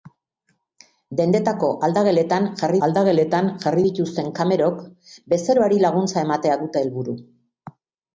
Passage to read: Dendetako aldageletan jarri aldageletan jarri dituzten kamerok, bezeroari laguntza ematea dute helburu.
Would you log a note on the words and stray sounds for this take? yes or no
no